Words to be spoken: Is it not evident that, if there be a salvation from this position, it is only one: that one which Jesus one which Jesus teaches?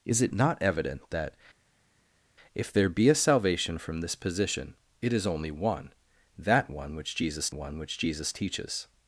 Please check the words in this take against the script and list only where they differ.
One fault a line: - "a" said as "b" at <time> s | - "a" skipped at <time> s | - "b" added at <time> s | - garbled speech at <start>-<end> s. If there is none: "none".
none